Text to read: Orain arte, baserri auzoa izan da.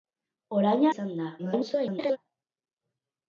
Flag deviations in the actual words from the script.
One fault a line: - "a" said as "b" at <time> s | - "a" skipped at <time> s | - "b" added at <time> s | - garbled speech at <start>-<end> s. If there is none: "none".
- "arte baserri auzoa" skipped at 0.8 s
- garbled speech at 1.4-2.2 s